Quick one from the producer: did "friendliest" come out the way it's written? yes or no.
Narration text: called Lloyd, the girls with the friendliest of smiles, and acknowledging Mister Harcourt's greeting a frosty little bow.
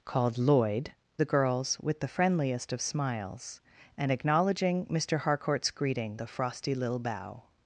yes